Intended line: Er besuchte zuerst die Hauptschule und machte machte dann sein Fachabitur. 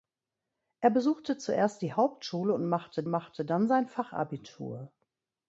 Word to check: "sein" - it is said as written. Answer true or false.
true